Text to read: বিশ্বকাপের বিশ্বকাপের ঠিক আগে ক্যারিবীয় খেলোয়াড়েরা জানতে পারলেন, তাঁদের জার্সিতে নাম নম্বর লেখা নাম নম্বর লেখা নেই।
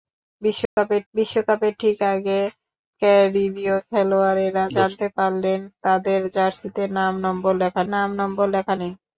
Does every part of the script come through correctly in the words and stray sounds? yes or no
no